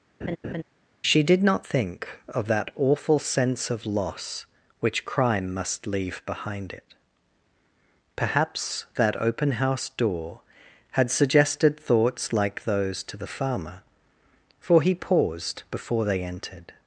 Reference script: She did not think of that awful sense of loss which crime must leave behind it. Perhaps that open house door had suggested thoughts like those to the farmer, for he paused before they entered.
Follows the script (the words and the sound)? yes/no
no